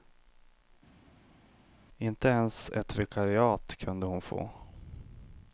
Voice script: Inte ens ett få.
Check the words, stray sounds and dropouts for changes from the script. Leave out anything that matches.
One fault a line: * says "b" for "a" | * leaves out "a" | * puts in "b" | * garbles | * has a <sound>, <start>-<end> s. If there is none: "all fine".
* puts in "vikariat kunde hon"